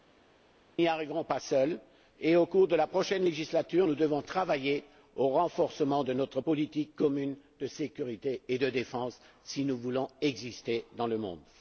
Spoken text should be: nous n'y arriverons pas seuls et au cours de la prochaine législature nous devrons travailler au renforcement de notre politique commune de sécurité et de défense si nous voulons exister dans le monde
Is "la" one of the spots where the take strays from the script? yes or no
no